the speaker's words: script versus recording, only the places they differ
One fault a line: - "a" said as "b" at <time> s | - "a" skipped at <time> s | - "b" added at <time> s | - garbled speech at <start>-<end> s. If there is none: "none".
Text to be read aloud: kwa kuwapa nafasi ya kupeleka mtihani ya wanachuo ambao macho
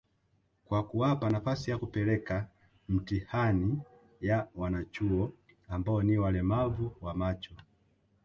- "ni walemavu wa" added at 6.0 s